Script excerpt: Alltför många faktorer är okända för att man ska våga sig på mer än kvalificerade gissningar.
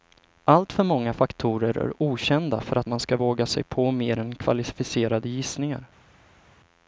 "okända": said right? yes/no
yes